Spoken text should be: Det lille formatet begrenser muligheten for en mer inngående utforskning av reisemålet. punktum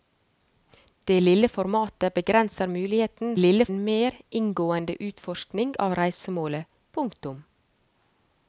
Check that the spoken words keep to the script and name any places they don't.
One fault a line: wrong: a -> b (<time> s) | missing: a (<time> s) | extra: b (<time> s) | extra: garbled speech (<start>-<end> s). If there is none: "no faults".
wrong: for -> lille (3.4 s)